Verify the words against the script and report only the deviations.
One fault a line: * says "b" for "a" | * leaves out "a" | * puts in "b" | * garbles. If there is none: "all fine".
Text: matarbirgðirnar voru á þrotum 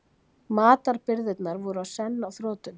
* puts in "senn"